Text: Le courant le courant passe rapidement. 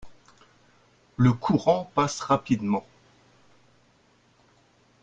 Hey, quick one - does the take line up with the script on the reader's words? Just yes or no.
no